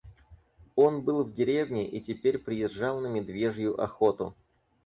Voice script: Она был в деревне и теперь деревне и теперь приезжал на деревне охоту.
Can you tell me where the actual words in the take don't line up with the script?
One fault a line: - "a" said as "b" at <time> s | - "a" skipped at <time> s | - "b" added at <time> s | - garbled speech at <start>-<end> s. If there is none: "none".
- "Она" said as "Он" at 0.8 s
- "деревне и теперь" skipped at 2.4 s
- "деревне" said as "медвежью" at 3.1 s